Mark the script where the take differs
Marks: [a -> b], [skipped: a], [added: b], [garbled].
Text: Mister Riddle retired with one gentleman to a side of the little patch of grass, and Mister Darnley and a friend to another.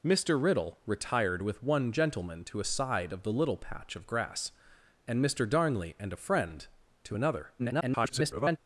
Mister Riddle retired with one gentleman to a side of the little patch of grass, and Mister Darnley and a friend to another. [garbled]